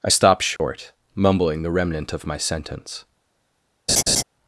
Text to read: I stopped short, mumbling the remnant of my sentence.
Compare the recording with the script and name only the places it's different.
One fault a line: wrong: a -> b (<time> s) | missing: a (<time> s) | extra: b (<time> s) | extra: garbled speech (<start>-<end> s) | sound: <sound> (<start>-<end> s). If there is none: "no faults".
sound: dropout (0.6-0.6 s)
sound: laugh (3.9-4.2 s)